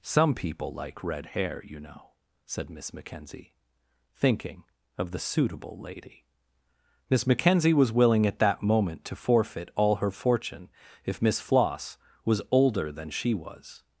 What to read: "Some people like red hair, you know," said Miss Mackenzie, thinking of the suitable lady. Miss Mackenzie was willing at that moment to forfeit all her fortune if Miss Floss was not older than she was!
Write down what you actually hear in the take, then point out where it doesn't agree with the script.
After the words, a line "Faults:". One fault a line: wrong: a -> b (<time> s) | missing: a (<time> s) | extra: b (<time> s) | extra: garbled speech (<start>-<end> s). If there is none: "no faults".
"Some people like red hair, you know," said Miss Mackenzie, thinking of the suitable lady. Miss Mackenzie was willing at that moment to forfeit all her fortune if Miss Floss was older than she was!
Faults:
missing: not (12.4 s)